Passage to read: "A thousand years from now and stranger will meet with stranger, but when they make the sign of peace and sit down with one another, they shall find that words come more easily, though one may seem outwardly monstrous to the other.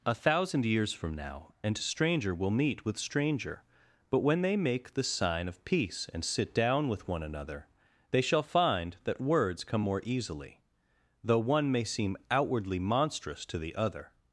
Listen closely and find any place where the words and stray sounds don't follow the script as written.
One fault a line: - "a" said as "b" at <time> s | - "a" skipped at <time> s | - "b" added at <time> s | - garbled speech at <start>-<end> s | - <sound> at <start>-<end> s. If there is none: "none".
none